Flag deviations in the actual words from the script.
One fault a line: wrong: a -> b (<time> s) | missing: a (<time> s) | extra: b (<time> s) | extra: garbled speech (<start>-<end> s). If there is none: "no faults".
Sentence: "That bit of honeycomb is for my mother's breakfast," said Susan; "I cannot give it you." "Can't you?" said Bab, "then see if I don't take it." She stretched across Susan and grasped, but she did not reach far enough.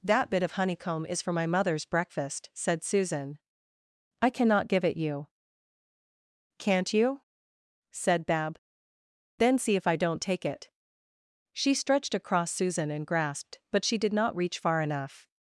no faults